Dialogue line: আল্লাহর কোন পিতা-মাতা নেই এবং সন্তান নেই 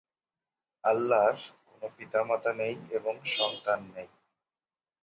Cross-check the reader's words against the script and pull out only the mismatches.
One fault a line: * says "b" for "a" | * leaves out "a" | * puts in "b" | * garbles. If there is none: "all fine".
all fine